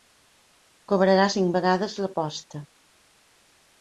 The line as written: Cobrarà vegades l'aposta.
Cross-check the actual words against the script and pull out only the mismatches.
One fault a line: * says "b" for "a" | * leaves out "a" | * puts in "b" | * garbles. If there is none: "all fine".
* puts in "cinc"